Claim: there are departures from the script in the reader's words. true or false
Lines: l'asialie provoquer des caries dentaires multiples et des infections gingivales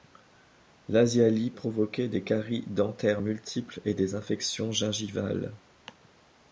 false